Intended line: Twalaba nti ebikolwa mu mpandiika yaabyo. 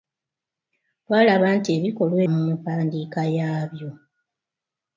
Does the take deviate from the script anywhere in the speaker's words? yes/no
no